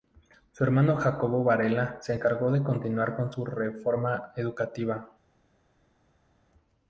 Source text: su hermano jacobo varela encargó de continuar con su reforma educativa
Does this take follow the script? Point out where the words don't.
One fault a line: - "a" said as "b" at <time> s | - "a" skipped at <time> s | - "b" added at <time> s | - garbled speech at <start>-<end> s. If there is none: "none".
- "se" added at 2.0 s